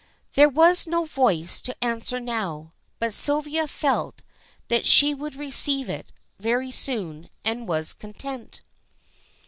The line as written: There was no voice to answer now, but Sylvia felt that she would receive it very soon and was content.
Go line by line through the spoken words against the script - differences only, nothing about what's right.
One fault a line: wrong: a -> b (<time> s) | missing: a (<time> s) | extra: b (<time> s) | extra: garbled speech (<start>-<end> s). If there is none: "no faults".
no faults